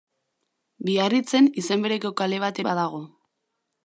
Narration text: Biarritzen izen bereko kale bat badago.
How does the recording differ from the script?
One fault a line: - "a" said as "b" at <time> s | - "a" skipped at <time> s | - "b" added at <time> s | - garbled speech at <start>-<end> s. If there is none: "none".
none